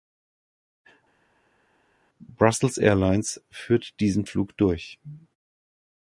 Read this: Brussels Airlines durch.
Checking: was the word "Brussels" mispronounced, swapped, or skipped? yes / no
no